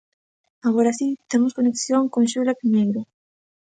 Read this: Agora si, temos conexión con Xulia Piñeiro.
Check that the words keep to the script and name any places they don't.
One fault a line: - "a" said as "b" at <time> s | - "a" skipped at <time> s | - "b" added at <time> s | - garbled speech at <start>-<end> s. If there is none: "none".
none